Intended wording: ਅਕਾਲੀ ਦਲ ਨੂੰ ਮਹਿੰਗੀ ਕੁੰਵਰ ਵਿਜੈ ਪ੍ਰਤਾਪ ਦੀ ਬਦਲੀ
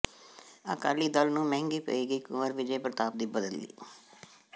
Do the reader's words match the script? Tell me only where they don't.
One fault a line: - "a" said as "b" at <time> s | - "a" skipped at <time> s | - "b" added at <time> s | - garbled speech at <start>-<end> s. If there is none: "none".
- "ਪਏਗੀ" added at 1.8 s